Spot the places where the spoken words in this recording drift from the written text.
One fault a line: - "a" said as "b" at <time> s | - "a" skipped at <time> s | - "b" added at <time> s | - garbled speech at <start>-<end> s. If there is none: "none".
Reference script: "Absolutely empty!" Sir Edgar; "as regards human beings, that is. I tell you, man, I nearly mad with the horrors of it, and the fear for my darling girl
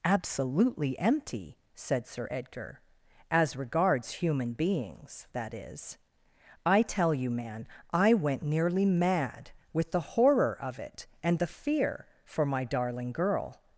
- "said" added at 1.8 s
- "went" added at 8.1 s
- "horrors" said as "horror" at 10.0 s